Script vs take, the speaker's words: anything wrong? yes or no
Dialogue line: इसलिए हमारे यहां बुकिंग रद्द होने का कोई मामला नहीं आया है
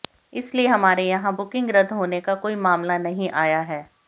no